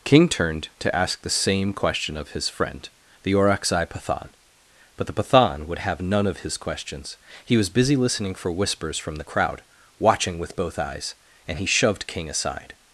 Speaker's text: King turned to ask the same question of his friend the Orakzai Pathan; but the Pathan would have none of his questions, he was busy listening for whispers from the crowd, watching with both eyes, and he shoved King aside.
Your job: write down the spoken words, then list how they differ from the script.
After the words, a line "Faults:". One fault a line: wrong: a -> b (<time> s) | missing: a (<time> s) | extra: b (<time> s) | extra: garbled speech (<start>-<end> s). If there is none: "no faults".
King turned to ask the same question of his friend the Orakzai Pathan; but the Pathan would have none of his questions, he was busy listening for whispers from the crowd, watching with both eyes, and he shoved King aside.
Faults:
no faults